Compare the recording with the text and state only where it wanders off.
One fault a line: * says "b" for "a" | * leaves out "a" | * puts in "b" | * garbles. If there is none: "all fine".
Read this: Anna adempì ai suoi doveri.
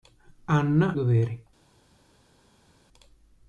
* leaves out "adempì ai suoi"